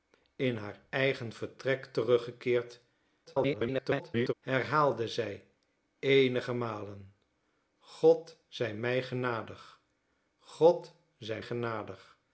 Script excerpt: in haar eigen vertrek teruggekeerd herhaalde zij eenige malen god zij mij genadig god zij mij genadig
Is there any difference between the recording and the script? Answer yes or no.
yes